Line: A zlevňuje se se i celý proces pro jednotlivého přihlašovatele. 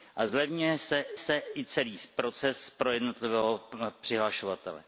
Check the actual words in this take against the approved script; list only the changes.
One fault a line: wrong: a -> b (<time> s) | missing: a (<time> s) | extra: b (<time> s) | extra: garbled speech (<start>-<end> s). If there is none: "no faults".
no faults